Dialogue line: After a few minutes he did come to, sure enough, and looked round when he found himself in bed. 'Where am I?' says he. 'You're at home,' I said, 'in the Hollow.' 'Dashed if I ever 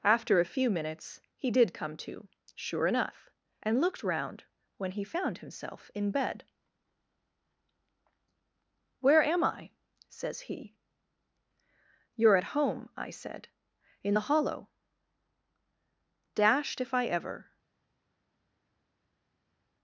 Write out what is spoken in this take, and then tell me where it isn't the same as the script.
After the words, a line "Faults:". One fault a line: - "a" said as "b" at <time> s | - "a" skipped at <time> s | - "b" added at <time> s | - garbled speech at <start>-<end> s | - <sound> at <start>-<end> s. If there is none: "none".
After a few minutes he did come to, sure enough, and looked round when he found himself in bed. 'Where am I?' says he. 'You're at home,' I said, 'in the Hollow.' 'Dashed if I ever
Faults:
none